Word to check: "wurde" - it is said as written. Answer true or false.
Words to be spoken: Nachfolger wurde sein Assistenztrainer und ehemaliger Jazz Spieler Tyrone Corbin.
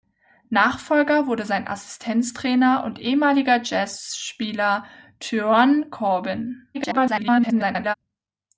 true